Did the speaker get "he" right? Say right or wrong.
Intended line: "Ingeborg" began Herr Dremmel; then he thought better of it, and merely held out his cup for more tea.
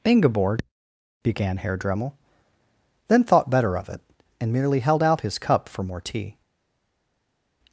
wrong